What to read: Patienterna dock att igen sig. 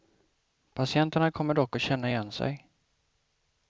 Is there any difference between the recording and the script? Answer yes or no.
yes